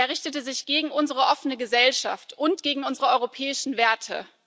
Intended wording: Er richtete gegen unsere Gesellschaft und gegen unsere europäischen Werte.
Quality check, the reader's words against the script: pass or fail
fail